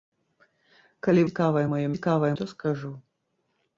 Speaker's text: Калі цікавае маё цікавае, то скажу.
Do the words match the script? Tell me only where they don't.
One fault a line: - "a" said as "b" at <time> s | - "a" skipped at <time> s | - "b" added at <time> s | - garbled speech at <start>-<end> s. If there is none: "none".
none